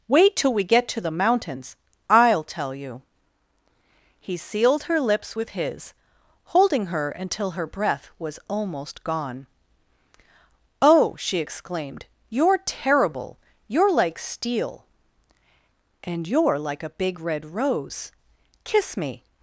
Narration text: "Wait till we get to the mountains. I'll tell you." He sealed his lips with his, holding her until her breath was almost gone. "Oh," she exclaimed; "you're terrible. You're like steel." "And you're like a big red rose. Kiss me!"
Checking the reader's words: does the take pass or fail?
fail